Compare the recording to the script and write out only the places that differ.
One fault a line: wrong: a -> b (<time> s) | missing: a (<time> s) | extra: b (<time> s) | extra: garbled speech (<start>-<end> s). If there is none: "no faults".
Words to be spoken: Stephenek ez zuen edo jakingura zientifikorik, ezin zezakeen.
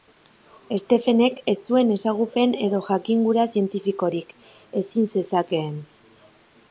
extra: ezagupen (2.0 s)